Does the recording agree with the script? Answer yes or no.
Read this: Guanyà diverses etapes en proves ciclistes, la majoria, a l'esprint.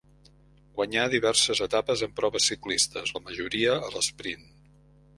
yes